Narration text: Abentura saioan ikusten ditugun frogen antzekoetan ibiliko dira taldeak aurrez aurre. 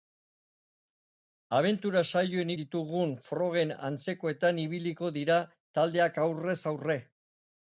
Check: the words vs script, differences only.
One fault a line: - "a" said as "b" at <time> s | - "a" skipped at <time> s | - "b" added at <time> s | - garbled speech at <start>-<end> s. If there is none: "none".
- "ikusten" skipped at 2.5 s